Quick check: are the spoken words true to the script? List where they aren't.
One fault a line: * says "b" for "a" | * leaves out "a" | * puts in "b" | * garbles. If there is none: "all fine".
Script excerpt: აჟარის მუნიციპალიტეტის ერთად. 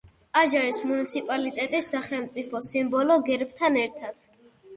* puts in "სახელმწიფო სიმბოლო გერბთან"